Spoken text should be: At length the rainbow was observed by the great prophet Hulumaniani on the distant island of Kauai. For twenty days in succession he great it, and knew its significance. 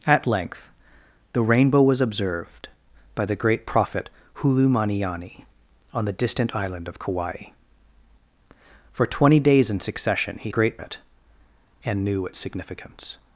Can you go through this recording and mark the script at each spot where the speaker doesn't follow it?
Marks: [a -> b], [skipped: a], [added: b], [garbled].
At length the rainbow was observed by the great prophet Hulumaniani on the distant island of Kauai. For twenty days in succession he great it, and knew its significance.